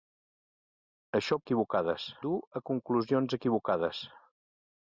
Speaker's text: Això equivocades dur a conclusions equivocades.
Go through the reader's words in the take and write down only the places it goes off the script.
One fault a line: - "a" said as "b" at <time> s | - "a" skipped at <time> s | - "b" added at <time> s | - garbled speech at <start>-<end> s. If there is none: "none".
none